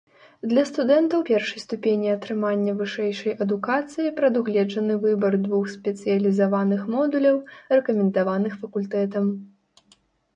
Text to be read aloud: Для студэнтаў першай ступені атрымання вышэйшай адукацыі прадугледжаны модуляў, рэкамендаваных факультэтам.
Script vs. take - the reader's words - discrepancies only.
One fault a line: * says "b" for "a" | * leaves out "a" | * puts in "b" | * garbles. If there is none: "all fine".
* puts in "выбар двух спецыялізаваных"